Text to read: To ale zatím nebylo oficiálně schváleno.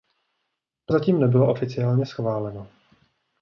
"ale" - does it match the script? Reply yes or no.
no